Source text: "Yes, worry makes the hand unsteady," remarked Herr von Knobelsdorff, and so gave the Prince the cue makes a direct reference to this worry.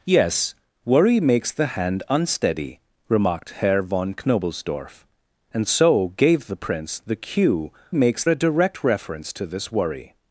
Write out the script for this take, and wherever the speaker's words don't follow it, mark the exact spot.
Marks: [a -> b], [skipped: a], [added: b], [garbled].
"Yes, worry makes the hand unsteady," remarked Herr von Knobelsdorff, and so gave the Prince the cue makes a direct reference to this worry.